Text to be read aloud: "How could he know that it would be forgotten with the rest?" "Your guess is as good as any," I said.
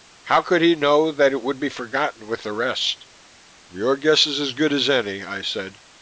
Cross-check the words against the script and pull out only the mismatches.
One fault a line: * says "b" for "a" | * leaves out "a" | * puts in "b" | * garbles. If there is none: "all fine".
all fine